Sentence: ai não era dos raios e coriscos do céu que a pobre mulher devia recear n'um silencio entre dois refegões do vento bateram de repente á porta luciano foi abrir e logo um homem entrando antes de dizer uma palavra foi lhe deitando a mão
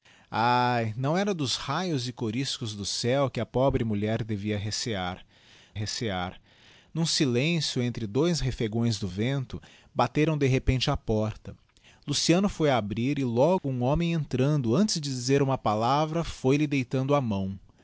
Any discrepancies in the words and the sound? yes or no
yes